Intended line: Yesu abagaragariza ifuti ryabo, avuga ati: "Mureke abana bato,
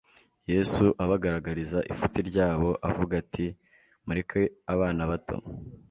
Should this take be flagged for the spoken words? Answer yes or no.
no